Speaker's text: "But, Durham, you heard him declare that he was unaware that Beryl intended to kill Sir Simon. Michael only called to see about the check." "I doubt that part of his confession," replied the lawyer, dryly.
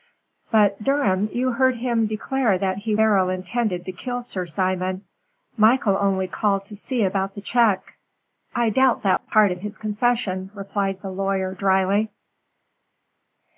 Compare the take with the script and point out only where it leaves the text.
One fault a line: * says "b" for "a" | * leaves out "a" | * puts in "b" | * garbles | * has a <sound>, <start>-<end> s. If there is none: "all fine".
* leaves out "was unaware that"